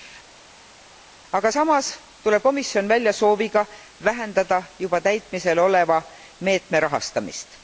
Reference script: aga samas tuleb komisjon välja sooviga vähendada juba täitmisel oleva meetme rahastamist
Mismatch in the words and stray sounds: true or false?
false